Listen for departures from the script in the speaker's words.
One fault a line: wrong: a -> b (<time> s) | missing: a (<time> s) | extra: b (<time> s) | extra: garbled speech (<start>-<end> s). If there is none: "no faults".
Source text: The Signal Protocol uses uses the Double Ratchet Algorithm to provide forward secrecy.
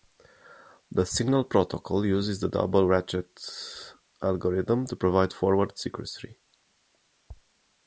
missing: uses (2.4 s)